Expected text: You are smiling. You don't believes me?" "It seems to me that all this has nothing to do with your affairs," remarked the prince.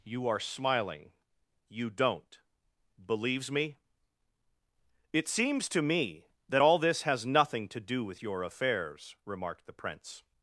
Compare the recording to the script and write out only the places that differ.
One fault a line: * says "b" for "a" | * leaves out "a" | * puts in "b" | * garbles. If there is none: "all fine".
all fine